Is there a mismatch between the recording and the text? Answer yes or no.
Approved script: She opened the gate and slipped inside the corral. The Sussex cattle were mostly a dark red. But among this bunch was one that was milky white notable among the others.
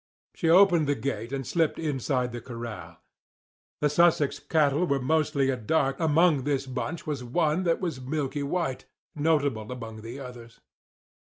yes